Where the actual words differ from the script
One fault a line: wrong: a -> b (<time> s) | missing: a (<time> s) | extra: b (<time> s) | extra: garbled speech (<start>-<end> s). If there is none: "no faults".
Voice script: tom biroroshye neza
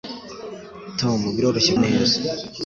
no faults